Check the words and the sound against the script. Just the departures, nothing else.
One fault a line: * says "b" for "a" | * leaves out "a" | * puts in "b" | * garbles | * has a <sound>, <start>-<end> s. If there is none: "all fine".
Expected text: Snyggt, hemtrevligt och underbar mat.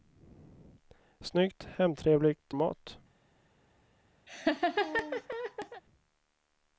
* leaves out "och underbar"
* has a laugh, 4.3-5.8 s